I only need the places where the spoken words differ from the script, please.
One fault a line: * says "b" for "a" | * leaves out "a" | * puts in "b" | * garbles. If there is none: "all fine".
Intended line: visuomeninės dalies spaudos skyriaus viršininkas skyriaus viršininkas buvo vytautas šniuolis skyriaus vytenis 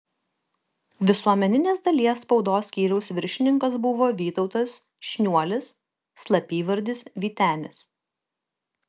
* leaves out "skyriaus viršininkas"
* says "slapyvardis" for "skyriaus"